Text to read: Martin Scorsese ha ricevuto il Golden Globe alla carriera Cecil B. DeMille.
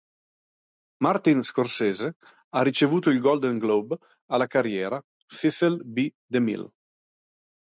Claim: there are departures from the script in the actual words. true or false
false